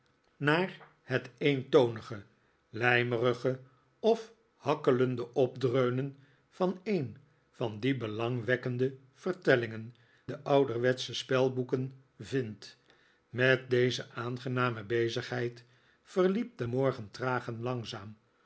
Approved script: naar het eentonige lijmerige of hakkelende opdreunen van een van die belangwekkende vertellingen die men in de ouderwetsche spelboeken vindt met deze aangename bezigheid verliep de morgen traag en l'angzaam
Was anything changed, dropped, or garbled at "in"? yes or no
yes